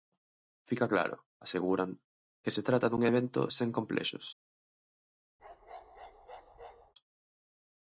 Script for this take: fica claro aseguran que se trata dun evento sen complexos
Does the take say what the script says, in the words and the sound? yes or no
no